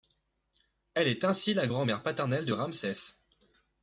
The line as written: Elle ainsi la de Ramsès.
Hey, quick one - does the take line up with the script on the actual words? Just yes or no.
no